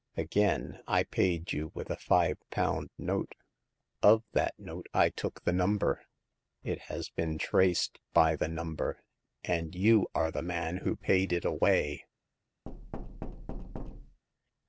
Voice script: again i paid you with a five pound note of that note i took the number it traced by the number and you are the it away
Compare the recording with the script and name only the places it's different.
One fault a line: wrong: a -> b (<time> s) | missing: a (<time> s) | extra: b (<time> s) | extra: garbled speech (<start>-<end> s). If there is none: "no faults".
extra: has been (6.9 s)
extra: man who paid (10.4 s)